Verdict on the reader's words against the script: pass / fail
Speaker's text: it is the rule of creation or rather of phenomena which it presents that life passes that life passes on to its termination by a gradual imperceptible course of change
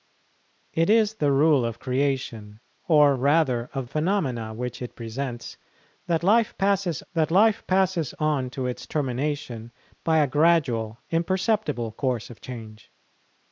pass